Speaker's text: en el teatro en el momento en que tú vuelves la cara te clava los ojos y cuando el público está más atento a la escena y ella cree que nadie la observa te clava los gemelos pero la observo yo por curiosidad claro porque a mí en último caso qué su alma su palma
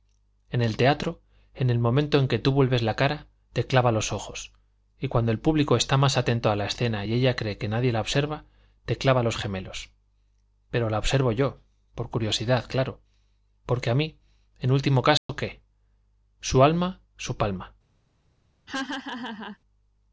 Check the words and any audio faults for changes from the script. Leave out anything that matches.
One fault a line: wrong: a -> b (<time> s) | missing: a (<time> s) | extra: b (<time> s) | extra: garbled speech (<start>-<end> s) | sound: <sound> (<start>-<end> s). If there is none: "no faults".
sound: dropout (15.2-15.3 s)
sound: laugh (18.7-19.6 s)